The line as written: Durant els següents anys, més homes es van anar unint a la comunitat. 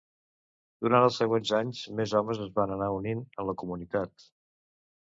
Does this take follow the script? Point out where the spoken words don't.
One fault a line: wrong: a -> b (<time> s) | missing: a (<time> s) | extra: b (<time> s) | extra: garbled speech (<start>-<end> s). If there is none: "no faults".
no faults